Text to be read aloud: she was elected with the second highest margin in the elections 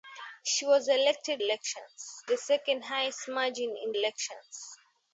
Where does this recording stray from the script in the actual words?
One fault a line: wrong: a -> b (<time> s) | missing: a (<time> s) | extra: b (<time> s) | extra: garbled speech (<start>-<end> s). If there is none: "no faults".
wrong: with -> elections (1.4 s)
missing: the (3.9 s)